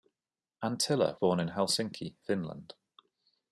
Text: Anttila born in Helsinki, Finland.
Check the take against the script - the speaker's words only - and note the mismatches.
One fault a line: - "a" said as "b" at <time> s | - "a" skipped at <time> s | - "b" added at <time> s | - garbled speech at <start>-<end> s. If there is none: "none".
none